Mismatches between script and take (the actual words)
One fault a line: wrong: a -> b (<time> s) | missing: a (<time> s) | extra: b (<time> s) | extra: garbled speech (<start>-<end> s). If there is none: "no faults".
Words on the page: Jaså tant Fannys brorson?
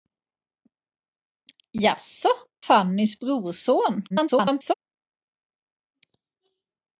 missing: tant (2.3 s)
extra: garbled speech (4.1-4.7 s)